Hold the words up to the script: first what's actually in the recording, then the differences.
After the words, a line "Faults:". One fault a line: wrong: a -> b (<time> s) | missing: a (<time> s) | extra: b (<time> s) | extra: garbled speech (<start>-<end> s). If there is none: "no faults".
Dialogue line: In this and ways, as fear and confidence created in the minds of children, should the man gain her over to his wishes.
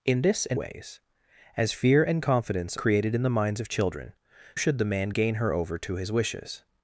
In this and ways, as fear and confidence created in the minds of children, should the man gain her over to his wishes.
Faults:
no faults